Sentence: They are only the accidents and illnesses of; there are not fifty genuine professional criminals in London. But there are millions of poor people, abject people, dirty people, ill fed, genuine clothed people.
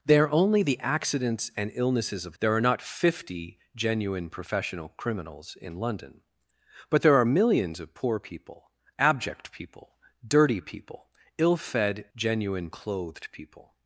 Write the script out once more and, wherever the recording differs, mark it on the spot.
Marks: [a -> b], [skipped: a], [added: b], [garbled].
They are only the accidents and illnesses of; there are not fifty genuine professional criminals in London. But there are millions of poor people, abject people, dirty people, ill fed, genuine clothed people.